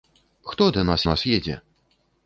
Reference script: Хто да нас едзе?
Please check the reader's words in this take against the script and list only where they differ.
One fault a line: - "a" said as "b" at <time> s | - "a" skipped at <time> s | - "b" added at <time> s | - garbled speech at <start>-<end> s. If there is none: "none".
- "нас" added at 1.0 s